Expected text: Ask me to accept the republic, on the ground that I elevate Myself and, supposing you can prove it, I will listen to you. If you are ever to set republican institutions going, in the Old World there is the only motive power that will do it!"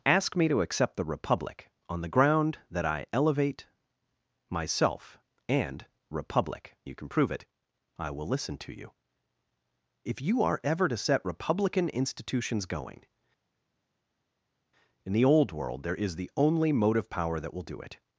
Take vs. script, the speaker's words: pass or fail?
fail